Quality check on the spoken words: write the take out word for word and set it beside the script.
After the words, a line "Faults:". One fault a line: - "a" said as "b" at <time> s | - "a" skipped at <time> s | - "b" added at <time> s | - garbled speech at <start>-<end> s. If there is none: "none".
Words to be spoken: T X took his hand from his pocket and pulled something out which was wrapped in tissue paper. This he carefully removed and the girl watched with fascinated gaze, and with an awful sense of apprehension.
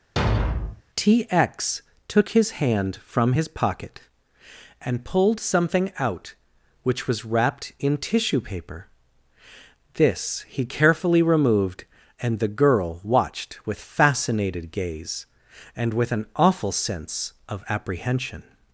T X took his hand from his pocket and pulled something out which was wrapped in tissue paper. This he carefully removed and the girl watched with fascinated gaze, and with an awful sense of apprehension.
Faults:
none